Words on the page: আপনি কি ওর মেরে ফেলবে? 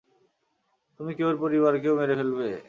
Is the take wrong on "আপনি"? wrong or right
wrong